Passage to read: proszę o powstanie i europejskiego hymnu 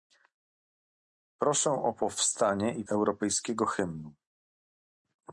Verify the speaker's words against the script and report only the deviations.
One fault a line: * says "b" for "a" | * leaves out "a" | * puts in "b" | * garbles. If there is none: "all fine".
all fine